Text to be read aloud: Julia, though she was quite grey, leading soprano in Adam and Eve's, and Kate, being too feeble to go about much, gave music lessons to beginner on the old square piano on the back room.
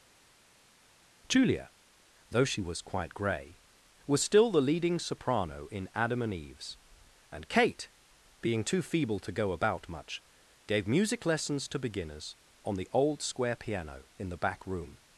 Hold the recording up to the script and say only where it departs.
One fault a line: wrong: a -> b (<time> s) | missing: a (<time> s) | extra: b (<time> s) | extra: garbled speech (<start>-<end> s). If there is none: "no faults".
extra: was still the (4.1 s)
wrong: beginner -> beginners (11.8 s)
wrong: on -> in (14.2 s)